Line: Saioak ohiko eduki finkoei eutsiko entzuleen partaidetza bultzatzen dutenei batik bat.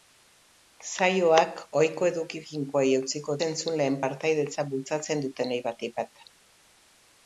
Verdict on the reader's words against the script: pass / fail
pass